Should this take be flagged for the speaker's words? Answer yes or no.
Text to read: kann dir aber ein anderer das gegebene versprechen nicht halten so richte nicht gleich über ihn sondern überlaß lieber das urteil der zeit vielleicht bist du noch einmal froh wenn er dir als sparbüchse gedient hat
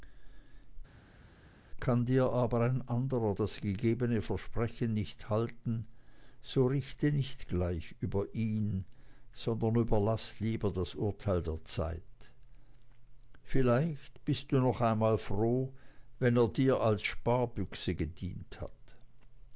no